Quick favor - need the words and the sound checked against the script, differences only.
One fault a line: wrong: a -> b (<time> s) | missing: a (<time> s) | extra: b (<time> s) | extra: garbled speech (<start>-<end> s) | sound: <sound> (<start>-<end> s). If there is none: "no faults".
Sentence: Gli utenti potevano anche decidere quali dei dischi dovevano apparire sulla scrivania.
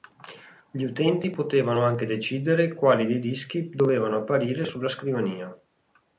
no faults